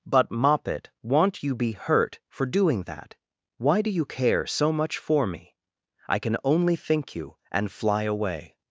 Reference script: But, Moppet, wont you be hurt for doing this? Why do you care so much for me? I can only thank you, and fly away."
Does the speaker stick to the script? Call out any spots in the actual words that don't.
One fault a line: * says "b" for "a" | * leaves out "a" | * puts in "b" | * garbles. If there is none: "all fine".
* says "that" for "this"
* says "think" for "thank"